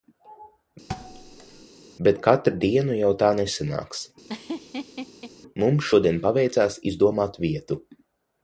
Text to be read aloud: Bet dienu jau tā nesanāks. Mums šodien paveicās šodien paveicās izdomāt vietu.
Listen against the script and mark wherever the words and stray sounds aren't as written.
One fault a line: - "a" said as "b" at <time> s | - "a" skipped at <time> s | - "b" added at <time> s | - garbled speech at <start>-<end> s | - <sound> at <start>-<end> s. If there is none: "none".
- thud at 0.9-1.7 s
- "katru" added at 2.3 s
- laugh at 4.3-5.3 s
- "šodien paveicās" skipped at 6.8 s